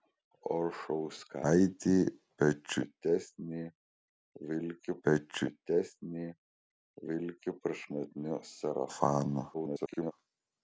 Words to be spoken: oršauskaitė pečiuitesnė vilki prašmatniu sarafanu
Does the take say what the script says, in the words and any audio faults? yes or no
no